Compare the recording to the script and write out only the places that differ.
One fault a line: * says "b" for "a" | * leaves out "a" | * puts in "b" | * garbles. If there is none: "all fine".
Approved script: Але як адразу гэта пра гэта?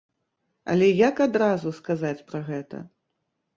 * says "сказаць" for "гэта"